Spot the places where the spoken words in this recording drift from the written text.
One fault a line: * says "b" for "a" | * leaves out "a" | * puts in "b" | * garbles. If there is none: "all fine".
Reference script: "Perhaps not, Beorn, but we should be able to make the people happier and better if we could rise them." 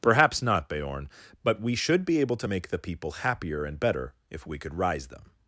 all fine